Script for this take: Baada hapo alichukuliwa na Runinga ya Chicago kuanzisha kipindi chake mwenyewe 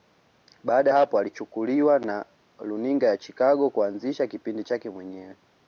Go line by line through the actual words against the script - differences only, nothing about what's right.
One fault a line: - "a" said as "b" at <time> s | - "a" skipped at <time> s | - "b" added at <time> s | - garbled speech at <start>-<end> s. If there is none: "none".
none